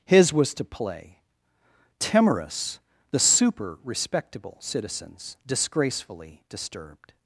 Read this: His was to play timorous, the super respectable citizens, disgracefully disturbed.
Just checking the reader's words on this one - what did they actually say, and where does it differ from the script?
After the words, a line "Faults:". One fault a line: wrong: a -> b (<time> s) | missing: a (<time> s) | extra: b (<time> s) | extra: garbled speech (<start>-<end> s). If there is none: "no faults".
His was to play timorous, the super respectable citizens, disgracefully disturbed.
Faults:
no faults